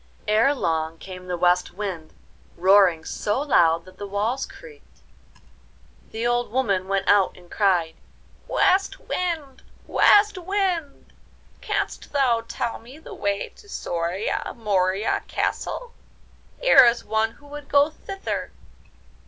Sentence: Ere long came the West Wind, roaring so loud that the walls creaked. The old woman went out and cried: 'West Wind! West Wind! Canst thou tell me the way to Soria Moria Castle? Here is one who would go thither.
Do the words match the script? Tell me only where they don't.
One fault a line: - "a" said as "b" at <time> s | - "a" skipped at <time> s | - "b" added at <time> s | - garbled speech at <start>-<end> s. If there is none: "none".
none